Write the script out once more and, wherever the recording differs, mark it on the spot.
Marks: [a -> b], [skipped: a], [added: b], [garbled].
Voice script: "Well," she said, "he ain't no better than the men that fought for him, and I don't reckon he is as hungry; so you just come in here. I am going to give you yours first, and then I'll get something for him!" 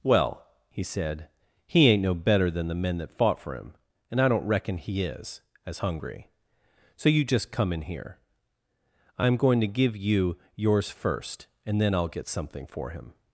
"Well," [she -> he] said, "he ain't no better than the men that fought for him, and I don't reckon he is as hungry; so you just come in here. I am going to give you yours first, and then I'll get something for him!"